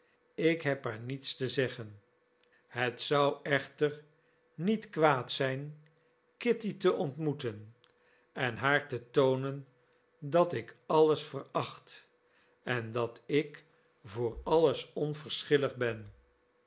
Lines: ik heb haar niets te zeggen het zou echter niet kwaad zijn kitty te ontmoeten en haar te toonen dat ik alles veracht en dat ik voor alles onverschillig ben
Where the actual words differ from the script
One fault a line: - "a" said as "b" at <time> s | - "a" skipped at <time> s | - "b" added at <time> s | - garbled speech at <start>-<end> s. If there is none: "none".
none